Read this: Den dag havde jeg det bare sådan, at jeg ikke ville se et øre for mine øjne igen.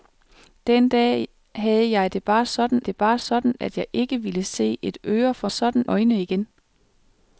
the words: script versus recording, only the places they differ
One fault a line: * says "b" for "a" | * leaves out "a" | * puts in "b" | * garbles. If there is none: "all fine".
* puts in "det bare sådan"
* says "sådan" for "mine"